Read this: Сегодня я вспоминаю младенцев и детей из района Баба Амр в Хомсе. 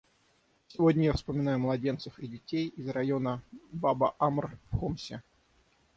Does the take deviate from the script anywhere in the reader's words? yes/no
no